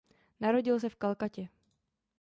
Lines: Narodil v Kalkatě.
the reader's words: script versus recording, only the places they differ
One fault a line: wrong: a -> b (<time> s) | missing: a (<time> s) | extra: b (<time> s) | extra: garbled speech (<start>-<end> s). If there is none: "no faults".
extra: se (0.8 s)